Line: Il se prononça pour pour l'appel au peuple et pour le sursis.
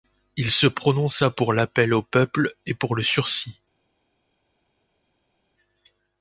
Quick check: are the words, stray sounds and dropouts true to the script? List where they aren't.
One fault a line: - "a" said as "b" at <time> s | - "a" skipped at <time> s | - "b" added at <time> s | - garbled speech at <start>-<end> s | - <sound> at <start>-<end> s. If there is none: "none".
- "pour" skipped at 1.5 s